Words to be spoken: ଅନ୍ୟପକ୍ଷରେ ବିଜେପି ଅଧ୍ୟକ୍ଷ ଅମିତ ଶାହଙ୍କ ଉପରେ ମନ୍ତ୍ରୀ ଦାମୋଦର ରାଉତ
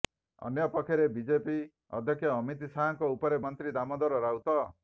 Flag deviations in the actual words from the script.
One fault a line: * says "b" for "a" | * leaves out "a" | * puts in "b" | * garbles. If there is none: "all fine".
all fine